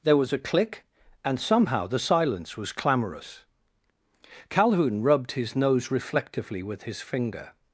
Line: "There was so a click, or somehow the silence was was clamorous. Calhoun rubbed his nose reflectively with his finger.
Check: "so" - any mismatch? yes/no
yes